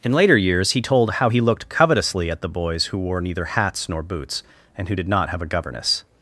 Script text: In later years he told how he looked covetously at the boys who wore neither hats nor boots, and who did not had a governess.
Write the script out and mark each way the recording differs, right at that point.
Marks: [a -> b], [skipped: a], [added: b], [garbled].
In later years he told how he looked covetously at the boys who wore neither hats nor boots, and who did not [had -> have] a governess.